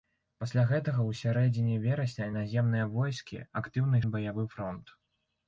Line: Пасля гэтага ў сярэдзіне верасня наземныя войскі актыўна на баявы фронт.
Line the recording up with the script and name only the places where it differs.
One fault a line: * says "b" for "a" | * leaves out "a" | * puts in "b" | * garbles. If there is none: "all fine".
all fine